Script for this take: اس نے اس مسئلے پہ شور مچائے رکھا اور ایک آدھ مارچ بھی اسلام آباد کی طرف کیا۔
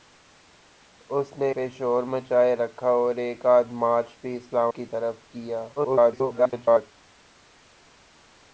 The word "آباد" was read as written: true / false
false